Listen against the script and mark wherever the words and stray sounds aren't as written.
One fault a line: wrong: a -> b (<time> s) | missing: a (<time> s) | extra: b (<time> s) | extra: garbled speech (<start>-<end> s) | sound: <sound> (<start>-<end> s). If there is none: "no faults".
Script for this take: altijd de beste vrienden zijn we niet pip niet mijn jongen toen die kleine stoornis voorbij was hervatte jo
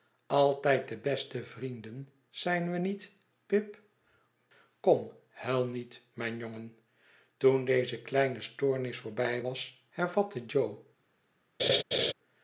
extra: kom huil (4.8 s)
wrong: die -> deze (7.7 s)
sound: laugh (11.6-12.1 s)